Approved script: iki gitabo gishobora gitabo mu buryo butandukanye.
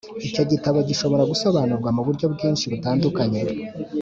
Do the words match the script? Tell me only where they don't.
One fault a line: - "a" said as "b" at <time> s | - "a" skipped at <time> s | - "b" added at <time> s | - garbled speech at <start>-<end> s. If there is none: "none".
- "iki" said as "icyo" at 0.3 s
- "gitabo" said as "gusobanurwa" at 1.3 s
- "bwinshi" added at 2.3 s